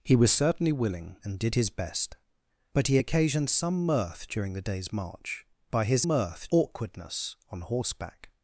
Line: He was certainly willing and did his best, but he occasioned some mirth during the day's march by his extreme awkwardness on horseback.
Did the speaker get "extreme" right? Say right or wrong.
wrong